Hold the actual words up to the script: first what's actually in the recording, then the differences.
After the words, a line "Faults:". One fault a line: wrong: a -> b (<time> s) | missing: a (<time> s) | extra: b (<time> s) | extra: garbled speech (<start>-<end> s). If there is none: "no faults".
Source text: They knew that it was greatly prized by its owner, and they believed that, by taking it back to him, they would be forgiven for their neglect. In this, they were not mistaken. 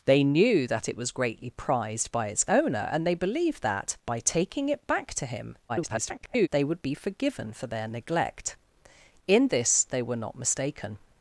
They knew that it was greatly prized by its owner, and they believed that, by taking it back to him, [garbled] they would be forgiven for their neglect. In this, they were not mistaken.
Faults:
extra: garbled speech (5.7-6.5 s)